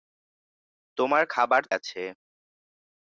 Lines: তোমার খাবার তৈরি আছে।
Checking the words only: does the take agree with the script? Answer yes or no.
no